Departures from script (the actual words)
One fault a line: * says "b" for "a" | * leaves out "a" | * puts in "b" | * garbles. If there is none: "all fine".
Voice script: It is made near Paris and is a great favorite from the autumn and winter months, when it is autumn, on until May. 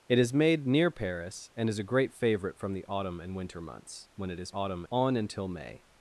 all fine